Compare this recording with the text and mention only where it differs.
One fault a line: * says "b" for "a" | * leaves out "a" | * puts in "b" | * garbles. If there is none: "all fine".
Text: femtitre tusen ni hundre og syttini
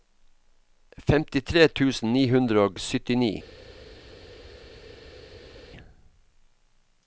all fine